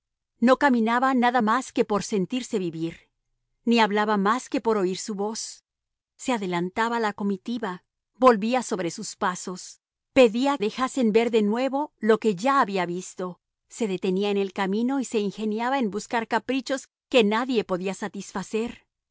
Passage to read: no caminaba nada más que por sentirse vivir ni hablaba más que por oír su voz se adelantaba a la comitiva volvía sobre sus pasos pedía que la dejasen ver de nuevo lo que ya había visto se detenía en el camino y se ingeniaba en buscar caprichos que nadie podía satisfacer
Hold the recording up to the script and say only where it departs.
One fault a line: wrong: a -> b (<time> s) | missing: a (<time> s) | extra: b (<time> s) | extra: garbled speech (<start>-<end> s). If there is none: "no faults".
missing: que la (10.6 s)